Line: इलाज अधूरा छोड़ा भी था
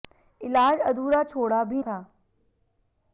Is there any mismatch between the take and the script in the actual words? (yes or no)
no